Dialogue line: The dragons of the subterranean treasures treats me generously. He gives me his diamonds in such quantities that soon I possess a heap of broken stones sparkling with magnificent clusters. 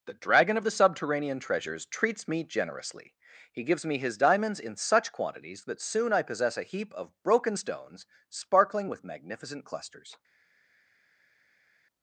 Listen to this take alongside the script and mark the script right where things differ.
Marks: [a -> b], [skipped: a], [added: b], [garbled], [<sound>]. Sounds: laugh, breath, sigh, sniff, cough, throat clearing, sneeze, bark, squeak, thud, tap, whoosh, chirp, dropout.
The [dragons -> dragon] of the subterranean treasures treats me generously. He gives me his diamonds in such quantities that soon I possess a heap of broken stones sparkling with magnificent clusters.